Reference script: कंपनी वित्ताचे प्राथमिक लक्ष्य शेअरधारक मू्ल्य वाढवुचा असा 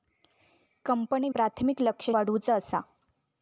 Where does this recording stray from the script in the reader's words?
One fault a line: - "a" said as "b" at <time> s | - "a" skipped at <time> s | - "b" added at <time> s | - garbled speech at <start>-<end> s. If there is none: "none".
- "वित्ताचे" skipped at 1.3 s
- "शेअरधारक मू्ल्य" skipped at 2.1 s